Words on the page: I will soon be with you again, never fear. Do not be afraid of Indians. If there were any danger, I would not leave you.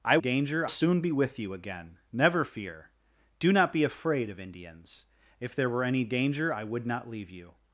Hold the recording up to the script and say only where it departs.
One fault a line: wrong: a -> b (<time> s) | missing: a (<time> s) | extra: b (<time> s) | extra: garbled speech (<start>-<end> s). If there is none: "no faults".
wrong: will -> danger (0.2 s)